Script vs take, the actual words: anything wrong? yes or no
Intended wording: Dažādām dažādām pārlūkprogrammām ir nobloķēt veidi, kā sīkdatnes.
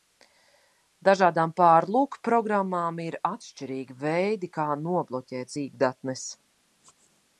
yes